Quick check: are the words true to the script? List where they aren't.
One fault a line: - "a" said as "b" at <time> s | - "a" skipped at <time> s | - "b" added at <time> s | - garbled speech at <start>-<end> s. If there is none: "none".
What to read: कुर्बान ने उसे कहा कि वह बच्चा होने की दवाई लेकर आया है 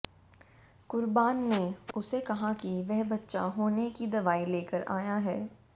none